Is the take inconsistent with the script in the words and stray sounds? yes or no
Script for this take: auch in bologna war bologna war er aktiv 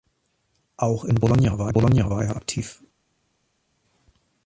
no